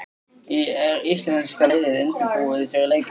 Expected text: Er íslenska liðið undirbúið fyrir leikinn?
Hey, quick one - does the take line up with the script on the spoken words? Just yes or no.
yes